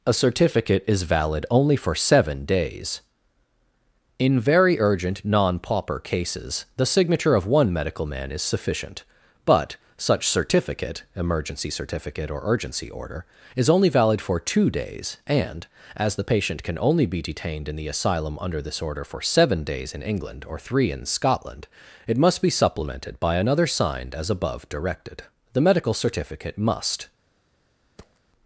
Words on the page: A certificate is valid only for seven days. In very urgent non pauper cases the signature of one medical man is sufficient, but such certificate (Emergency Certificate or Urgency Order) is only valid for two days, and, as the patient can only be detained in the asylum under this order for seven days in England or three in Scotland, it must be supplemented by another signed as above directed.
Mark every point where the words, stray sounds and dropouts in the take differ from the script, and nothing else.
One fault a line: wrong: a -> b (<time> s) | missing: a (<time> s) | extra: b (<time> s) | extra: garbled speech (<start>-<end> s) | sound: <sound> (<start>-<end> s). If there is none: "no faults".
extra: The medical certificate must (25.5 s)
sound: thud (28.0-28.2 s)